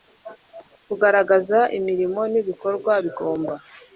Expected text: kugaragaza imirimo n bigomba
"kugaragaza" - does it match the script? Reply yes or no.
yes